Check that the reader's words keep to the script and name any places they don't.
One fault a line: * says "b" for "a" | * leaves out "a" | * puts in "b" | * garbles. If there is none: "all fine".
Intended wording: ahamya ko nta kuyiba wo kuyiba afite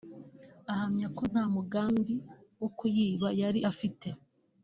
* says "mugambi" for "kuyiba"
* puts in "yari"